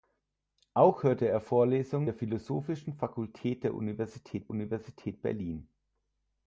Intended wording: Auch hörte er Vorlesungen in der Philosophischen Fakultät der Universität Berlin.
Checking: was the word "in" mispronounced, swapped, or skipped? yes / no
yes